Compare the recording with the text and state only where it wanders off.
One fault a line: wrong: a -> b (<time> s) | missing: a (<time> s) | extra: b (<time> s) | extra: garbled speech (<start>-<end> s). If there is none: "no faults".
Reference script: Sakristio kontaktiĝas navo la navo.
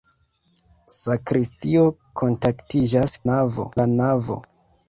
no faults